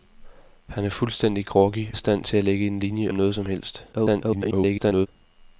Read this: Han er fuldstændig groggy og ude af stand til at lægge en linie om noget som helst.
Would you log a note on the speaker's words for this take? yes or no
yes